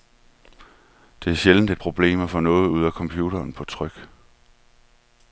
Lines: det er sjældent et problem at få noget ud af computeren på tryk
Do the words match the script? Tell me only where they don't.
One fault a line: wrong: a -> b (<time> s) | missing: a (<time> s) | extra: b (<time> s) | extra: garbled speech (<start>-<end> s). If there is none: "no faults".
no faults